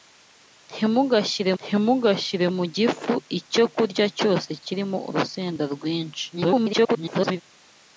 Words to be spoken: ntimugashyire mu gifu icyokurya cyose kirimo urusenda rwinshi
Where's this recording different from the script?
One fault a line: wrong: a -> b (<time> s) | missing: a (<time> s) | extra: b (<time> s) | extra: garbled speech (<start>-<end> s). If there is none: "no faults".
extra: ntimugashyire (1.6 s)
extra: garbled speech (6.3-7.4 s)